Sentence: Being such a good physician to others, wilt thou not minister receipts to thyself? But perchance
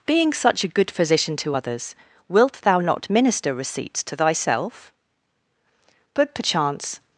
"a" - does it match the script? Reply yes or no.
yes